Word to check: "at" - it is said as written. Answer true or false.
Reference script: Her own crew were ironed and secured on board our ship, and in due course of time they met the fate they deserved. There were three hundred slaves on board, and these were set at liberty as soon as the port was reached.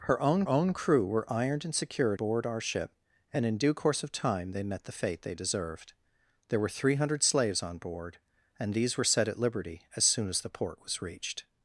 true